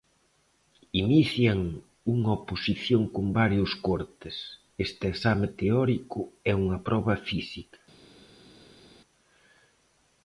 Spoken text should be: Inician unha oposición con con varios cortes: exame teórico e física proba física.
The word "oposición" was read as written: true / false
true